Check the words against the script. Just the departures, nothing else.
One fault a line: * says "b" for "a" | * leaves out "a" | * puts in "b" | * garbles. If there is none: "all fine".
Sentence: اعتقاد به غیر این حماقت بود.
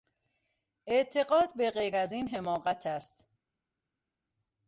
* puts in "از"
* says "است" for "بود"